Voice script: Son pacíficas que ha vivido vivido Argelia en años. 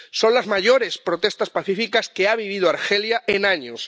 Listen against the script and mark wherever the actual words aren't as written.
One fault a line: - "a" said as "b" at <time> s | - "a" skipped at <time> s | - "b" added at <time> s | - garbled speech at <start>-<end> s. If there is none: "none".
- "las mayores protestas" added at 0.3 s
- "vivido" skipped at 2.7 s